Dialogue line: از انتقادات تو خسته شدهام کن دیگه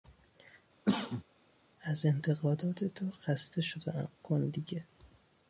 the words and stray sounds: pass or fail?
fail